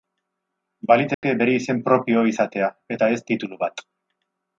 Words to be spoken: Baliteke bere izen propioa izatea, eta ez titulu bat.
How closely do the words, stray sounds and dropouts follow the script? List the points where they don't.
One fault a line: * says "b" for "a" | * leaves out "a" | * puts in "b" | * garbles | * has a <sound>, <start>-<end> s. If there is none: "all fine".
* has a dropout, 1.1-1.2 s